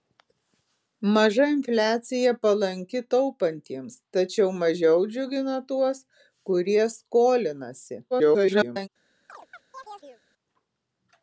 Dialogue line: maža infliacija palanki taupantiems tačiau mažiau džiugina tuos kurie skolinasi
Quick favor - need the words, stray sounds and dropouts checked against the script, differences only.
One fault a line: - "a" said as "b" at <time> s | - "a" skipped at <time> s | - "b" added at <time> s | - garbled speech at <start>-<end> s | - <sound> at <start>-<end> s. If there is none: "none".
- garbled speech at 8.1-8.9 s
- chirp at 9.3-10.2 s